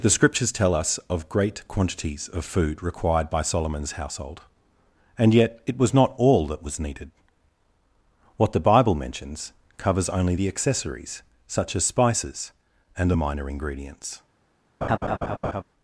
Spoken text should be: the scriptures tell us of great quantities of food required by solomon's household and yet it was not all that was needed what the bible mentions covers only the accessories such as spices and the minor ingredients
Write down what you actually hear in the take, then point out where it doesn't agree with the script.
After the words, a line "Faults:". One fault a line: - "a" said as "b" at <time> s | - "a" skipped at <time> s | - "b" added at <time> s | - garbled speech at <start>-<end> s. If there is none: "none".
the scriptures tell us of great quantities of food required by solomon's household and yet it was not all that was needed what the bible mentions covers only the accessories such as spices and the minor ingredients
Faults:
none